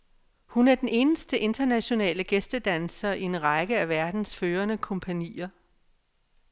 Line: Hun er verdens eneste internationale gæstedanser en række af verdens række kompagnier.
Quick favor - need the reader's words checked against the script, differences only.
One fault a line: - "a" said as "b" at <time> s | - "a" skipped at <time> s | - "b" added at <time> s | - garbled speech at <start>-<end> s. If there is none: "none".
- "verdens" said as "den" at 0.8 s
- "i" added at 3.1 s
- "række" said as "førende" at 4.3 s